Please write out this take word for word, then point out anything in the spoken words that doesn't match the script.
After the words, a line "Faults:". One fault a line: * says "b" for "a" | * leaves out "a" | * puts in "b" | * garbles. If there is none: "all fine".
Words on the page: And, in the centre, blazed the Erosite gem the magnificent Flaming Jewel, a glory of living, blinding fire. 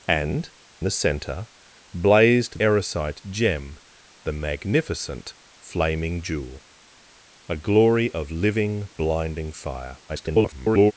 And, the centre, blazed Erosite gem the magnificent Flaming Jewel, a glory of living, blinding fire. [garbled]
Faults:
* leaves out "in"
* leaves out "the"
* garbles